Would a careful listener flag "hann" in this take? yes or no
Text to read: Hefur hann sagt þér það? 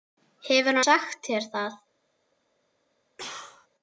yes